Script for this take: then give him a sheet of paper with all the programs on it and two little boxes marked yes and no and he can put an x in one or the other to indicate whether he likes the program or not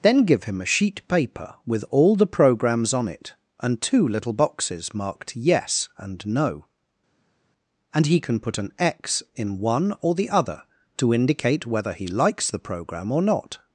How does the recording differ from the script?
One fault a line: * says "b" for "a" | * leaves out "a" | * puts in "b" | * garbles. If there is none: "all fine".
* leaves out "of"